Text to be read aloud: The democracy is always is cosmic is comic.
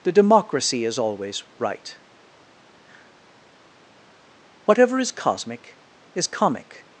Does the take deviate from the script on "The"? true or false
false